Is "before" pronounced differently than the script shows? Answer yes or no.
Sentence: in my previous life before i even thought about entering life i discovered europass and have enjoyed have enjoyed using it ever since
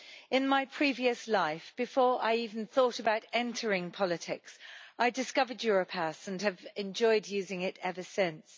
no